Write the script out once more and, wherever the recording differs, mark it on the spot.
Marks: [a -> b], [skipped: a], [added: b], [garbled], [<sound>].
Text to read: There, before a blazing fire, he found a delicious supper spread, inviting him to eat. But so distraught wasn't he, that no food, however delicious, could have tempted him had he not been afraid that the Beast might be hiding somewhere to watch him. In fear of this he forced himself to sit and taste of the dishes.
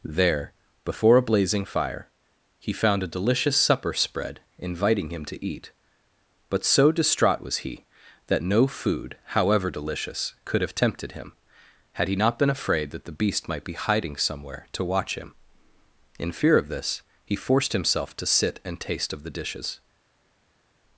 There, before a blazing fire, he found a delicious supper spread, inviting him to eat. But so distraught [wasn't -> was] he, that no food, however delicious, could have tempted him had he not been afraid that the Beast might be hiding somewhere to watch him. In fear of this he forced himself to sit and taste of the dishes.